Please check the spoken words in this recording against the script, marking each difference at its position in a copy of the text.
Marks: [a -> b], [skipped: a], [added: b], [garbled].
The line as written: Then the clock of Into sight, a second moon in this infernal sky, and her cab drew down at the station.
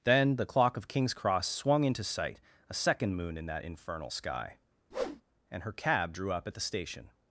Then the clock of [added: King's Cross swung] Into sight, a second moon in [this -> that] infernal sky, and her cab drew [down -> up] at the station.